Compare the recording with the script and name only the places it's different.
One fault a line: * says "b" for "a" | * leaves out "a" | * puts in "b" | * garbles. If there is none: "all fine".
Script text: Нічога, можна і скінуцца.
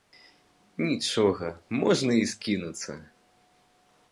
all fine